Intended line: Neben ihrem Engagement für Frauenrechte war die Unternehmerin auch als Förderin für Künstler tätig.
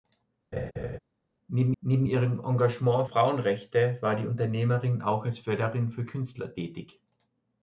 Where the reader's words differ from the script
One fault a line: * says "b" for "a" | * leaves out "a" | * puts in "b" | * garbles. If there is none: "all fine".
* puts in "neben"
* leaves out "für"